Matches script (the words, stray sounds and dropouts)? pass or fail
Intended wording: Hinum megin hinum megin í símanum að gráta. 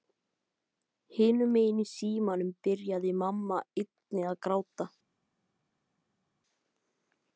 fail